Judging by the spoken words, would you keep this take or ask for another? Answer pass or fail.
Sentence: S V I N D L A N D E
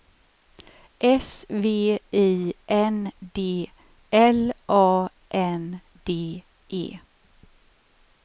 pass